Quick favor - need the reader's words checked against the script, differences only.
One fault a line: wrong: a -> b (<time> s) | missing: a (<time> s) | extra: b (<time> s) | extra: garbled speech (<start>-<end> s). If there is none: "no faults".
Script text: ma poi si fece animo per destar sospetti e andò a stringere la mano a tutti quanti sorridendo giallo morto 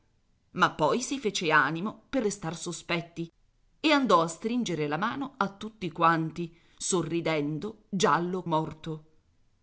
no faults